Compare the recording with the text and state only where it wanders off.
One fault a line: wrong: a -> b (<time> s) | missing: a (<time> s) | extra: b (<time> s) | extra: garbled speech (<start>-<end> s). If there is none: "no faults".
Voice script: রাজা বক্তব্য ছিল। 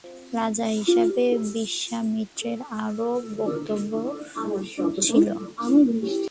extra: হিসেবে বিশ্বামিত্রের আরও (0.8 s)